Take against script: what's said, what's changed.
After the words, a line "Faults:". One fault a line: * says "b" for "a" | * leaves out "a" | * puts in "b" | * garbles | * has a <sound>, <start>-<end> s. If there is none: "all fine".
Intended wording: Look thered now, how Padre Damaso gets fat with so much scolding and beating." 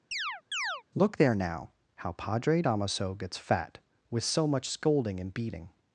Look there now, how Padre Damaso gets fat with so much scolding and beating."
Faults:
* has a chirp, 0.1-0.8 s
* says "there" for "thered"